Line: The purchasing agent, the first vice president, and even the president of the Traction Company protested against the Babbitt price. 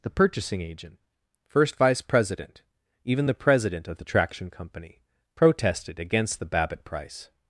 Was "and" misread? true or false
true